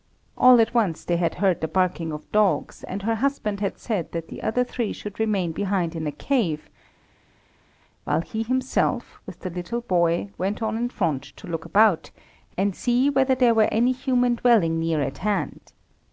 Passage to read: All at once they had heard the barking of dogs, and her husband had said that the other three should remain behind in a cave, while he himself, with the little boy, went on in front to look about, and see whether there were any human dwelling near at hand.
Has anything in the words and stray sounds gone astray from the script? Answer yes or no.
no